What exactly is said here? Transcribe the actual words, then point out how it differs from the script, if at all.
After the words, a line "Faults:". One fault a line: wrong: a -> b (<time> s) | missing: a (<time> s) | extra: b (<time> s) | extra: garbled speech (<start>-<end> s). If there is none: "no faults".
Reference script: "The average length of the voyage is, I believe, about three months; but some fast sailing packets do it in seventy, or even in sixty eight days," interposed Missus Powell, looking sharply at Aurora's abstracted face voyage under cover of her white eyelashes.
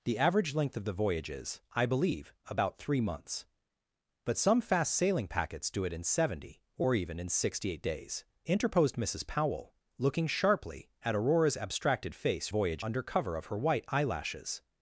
"The average length of the voyage is, I believe, about three months; but some fast sailing packets do it in seventy, or even in sixty eight days," interposed Missus Powell, looking sharply at Aurora's abstracted face voyage under cover of her white eyelashes.
Faults:
no faults